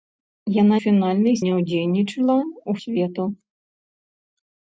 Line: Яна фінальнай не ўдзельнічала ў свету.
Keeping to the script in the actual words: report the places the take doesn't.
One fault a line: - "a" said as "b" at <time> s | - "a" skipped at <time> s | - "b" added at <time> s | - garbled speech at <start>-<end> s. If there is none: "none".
none